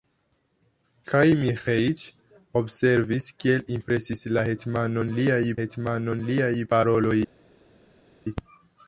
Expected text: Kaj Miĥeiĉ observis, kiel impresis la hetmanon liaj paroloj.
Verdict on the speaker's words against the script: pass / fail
fail